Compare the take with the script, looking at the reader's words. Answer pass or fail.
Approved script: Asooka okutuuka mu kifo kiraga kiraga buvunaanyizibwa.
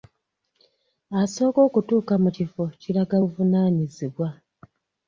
fail